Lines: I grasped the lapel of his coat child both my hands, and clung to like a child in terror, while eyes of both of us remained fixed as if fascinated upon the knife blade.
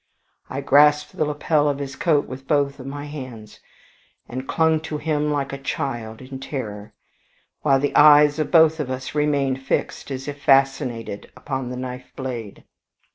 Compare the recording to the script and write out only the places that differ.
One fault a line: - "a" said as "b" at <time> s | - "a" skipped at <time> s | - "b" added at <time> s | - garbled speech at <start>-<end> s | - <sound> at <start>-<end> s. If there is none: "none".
- "child" said as "with" at 2.2 s
- "him" added at 5.0 s
- "the" added at 7.8 s